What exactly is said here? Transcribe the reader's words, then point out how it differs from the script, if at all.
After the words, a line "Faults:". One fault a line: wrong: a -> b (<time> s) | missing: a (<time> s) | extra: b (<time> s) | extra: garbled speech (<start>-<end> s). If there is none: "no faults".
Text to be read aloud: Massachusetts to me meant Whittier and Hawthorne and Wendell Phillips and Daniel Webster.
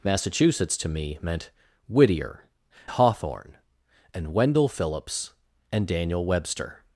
Massachusetts to me meant Whittier Hawthorne and Wendell Phillips and Daniel Webster.
Faults:
missing: and (2.5 s)